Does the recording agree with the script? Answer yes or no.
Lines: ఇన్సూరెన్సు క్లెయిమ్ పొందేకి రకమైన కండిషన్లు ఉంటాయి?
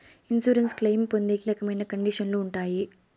yes